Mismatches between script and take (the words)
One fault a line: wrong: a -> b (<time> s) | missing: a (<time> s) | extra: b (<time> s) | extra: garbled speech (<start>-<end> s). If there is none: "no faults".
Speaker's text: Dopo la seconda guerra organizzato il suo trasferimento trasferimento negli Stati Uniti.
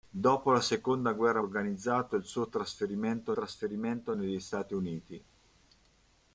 no faults